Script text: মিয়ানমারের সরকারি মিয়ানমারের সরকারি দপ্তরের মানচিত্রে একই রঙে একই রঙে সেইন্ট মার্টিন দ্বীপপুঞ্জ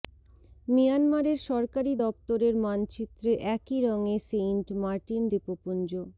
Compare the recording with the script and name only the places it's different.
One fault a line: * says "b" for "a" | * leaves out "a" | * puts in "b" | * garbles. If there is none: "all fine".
* leaves out "মিয়ানমারের সরকারি"
* leaves out "একই রঙে"